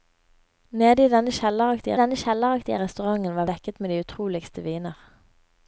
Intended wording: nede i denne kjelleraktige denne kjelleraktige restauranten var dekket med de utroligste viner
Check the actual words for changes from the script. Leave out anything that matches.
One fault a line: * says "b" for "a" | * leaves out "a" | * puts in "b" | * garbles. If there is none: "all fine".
all fine